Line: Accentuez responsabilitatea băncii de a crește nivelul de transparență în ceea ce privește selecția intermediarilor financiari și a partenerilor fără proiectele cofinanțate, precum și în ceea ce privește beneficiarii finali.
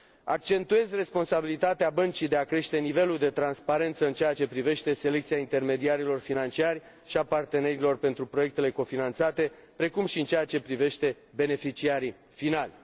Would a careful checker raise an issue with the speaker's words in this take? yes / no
yes